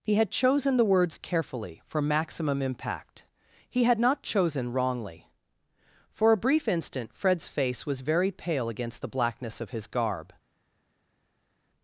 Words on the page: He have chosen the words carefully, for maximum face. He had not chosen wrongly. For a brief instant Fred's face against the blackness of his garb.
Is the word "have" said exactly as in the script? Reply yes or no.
no